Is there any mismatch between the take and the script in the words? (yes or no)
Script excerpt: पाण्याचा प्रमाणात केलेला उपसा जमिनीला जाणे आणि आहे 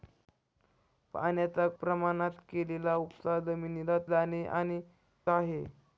no